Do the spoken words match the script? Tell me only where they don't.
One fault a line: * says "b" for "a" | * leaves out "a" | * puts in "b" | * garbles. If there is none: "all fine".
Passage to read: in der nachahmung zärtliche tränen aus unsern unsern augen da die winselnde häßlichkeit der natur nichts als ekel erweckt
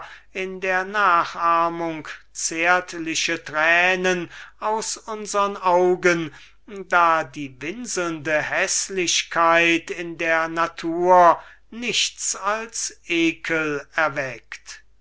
* leaves out "unsern"
* puts in "in"